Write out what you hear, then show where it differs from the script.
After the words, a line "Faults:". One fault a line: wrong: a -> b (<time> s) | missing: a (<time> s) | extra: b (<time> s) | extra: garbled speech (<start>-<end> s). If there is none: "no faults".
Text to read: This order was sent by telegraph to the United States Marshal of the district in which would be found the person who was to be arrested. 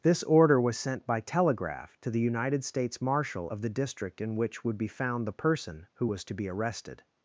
This order was sent by telegraph to the United States Marshal of the district in which would be found the person who was to be arrested.
Faults:
no faults